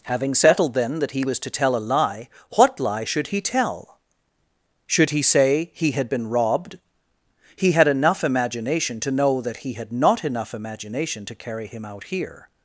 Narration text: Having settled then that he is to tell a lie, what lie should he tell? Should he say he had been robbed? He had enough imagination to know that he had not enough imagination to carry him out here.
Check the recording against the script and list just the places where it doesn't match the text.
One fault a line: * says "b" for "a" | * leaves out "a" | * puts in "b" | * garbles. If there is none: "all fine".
* says "was" for "is"